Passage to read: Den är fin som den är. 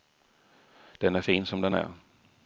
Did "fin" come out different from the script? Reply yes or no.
no